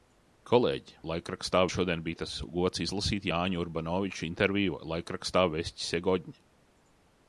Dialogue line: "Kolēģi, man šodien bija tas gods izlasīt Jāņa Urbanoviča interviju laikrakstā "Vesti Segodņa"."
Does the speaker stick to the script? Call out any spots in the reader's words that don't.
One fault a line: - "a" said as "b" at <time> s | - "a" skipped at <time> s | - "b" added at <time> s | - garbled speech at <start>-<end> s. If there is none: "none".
- "man" said as "laikrakstā" at 1.1 s